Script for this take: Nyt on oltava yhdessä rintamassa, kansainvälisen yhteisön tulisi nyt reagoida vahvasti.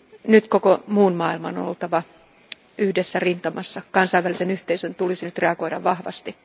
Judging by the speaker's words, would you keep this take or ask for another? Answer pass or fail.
fail